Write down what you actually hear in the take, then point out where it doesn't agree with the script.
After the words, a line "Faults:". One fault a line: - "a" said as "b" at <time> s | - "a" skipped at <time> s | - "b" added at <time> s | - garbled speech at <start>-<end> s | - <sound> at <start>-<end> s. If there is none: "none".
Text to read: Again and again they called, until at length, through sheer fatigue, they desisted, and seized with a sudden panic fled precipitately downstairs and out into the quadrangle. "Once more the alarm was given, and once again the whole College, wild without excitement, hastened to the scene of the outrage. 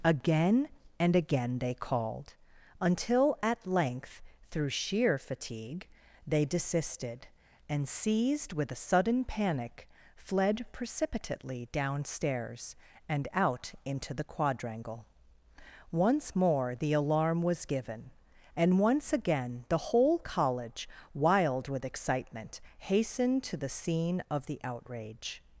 Again and again they called, until at length, through sheer fatigue, they desisted, and seized with a sudden panic fled precipitately downstairs and out into the quadrangle. "Once more the alarm was given, and once again the whole College, wild with excitement, hastened to the scene of the outrage.
Faults:
- "without" said as "with" at 21.7 s